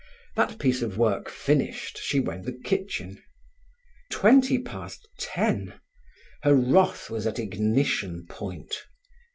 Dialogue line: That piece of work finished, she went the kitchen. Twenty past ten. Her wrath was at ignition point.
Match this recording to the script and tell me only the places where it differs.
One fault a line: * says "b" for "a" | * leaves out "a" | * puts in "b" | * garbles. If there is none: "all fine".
all fine